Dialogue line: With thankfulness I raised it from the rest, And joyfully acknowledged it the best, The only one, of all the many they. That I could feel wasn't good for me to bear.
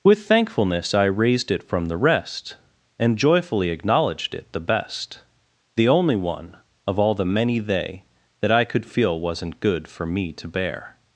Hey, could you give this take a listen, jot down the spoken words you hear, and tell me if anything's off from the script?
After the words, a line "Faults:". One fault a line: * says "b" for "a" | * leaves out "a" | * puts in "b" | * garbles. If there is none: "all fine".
With thankfulness I raised it from the rest, And joyfully acknowledged it the best, The only one, of all the many they. That I could feel wasn't good for me to bear.
Faults:
all fine